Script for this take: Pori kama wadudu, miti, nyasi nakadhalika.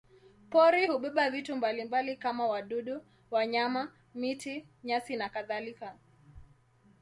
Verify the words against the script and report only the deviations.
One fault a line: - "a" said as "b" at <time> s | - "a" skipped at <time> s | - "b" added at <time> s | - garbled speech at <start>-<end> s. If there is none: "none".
- "hubeba vitu mbalimbali" added at 0.8 s
- "wanyama" added at 3.3 s